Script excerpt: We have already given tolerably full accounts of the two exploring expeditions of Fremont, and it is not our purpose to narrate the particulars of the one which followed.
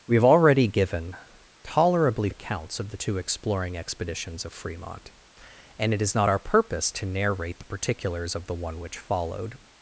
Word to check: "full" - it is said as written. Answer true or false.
false